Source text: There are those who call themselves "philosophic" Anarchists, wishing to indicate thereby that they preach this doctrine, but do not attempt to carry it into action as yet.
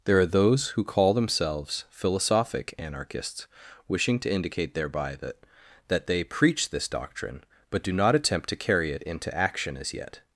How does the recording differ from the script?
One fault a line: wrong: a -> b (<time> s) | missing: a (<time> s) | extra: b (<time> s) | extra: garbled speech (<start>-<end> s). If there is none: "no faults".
extra: that (5.9 s)